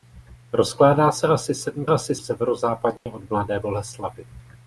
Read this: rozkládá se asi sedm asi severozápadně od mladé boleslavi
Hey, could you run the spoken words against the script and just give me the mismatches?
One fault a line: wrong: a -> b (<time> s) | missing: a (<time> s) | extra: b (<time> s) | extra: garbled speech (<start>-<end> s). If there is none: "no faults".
no faults